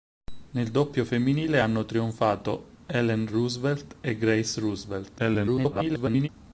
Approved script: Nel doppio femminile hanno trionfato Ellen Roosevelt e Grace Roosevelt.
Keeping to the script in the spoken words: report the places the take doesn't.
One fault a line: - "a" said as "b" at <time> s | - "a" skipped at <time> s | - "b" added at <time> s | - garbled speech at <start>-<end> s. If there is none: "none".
- garbled speech at 5.2-6.3 s